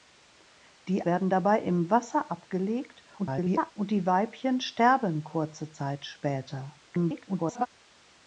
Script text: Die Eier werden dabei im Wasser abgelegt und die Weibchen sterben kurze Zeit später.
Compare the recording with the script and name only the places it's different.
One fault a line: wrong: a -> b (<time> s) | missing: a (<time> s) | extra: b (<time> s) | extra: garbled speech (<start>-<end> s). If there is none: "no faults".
missing: Eier (1.1 s)
extra: garbled speech (3.2-3.7 s)
extra: garbled speech (6.9-7.7 s)